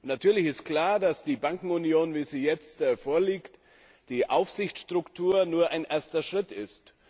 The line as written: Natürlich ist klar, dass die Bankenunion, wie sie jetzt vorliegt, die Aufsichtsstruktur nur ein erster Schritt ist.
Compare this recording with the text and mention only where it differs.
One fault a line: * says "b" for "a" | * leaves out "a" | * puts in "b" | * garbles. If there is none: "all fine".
all fine